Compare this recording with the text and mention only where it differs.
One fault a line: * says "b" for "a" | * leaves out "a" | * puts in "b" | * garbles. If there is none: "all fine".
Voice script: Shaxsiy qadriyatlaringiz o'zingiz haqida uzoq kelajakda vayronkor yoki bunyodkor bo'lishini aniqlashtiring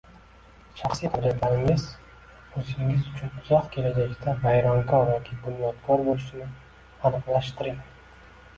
* says "uchun" for "haqida"